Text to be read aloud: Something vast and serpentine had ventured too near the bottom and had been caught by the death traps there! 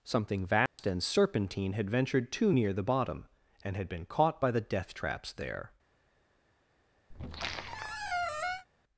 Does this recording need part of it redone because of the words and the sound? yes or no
yes